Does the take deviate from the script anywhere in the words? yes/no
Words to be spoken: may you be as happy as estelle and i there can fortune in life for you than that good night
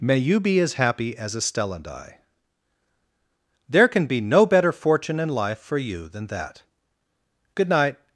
yes